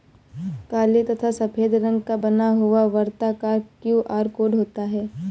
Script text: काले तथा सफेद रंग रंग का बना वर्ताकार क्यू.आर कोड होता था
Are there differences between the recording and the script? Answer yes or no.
yes